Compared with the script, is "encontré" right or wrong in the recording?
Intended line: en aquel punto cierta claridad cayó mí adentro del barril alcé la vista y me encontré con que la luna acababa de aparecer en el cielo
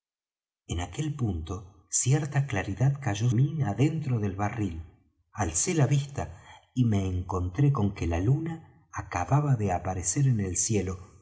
right